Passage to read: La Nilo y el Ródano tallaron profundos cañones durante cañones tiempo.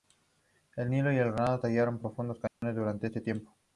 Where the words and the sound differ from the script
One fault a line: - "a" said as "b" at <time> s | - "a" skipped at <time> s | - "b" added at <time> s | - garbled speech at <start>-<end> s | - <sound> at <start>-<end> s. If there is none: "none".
- "La" said as "El" at 0.8 s
- dropout at 2.5-2.6 s
- "cañones" said as "este" at 3.0 s